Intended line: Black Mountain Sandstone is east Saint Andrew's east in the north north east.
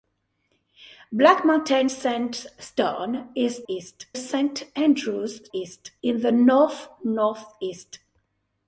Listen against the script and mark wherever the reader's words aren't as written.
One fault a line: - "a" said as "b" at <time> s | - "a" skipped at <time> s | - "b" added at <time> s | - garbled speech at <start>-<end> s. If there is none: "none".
none